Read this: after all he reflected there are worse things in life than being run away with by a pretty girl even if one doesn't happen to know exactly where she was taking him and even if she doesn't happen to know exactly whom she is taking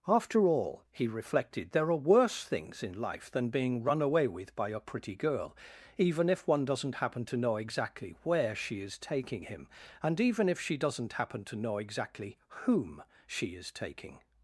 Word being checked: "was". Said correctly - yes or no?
no